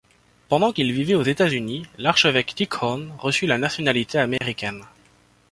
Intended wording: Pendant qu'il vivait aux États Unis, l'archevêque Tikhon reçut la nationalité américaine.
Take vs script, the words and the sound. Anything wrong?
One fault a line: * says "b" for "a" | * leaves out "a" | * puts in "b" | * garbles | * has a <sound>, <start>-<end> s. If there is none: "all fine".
* has a dropout, 4.4-4.4 s